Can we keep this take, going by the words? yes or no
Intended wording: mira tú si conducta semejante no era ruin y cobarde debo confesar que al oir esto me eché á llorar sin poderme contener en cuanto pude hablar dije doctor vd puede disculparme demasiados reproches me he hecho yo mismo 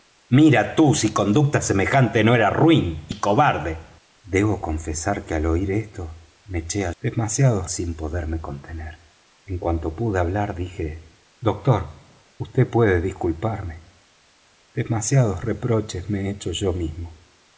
no